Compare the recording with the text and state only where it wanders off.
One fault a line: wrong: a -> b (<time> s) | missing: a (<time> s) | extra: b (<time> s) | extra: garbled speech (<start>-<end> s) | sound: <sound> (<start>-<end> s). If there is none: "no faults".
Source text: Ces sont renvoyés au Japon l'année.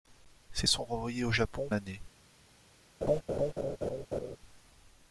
sound: laugh (3.0-4.4 s)